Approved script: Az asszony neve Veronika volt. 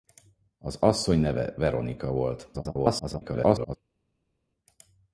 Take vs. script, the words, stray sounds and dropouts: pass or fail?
fail